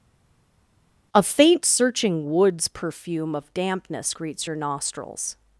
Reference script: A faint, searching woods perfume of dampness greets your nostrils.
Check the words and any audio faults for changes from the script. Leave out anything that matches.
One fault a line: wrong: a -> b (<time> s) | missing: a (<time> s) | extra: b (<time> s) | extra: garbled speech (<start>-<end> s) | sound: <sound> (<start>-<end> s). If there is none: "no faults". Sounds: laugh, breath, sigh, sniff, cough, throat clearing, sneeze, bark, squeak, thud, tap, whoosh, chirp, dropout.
no faults